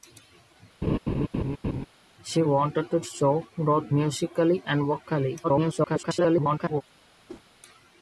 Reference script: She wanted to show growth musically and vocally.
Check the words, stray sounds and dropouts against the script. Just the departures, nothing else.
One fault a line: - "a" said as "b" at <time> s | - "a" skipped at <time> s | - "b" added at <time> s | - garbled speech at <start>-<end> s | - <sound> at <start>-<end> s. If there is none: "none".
- laugh at 0.8-1.9 s
- garbled speech at 5.4-6.8 s
- whoosh at 7.3-7.4 s